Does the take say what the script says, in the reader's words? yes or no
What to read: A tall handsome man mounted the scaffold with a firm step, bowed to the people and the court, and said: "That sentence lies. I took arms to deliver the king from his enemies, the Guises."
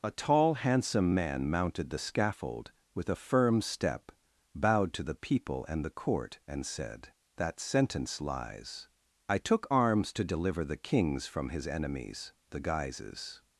no